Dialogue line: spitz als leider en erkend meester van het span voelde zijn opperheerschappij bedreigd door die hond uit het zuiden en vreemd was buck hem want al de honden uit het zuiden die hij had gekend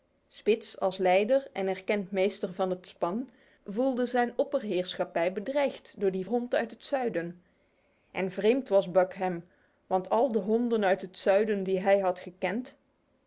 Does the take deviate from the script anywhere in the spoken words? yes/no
no